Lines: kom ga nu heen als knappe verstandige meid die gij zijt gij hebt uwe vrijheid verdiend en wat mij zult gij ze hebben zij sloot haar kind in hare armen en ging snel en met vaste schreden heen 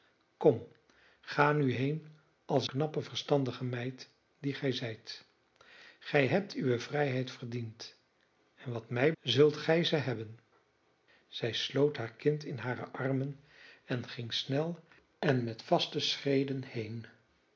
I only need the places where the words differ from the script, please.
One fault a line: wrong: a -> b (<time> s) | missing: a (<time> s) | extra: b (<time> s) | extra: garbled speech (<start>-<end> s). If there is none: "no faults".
no faults